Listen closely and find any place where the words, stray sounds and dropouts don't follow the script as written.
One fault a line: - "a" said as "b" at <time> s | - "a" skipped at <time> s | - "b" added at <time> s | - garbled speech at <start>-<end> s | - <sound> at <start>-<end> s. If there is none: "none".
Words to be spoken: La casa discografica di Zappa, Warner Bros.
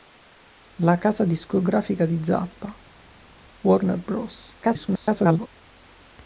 - garbled speech at 4.6-5.5 s